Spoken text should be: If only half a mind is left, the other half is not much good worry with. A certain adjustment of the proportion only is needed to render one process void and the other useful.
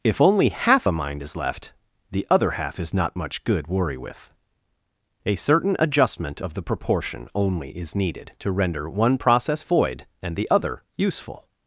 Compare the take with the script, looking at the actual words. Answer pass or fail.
pass